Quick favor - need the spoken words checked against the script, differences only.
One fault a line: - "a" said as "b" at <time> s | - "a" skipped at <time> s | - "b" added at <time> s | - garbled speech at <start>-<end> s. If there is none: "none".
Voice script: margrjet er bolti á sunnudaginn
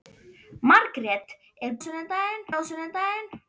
- "bolti" said as "sunnudaginn" at 1.8 s